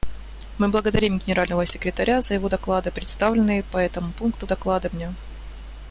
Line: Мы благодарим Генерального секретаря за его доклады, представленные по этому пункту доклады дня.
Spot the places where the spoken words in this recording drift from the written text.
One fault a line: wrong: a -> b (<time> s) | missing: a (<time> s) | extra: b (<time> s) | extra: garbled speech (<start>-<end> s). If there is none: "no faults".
no faults